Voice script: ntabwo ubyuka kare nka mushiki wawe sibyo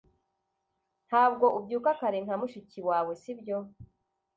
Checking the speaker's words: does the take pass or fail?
pass